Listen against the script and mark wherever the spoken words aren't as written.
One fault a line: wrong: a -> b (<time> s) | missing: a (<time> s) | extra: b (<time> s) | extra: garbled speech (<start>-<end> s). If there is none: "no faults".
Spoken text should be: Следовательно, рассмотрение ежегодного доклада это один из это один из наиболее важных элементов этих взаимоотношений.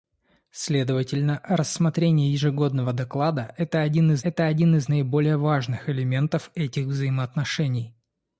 no faults